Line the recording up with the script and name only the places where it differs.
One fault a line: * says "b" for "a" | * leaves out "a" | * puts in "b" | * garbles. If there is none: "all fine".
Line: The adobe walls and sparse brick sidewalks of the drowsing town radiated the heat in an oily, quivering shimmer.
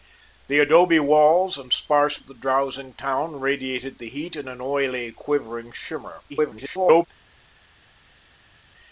* leaves out "brick sidewalks"
* garbles